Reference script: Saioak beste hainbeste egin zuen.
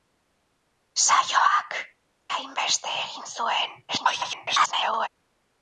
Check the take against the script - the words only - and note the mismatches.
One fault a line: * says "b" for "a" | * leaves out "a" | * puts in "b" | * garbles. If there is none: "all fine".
* leaves out "beste"
* garbles